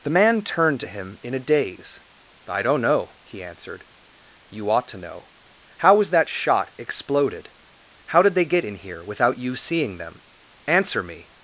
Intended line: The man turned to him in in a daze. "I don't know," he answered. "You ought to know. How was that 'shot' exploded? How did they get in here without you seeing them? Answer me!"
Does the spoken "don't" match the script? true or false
true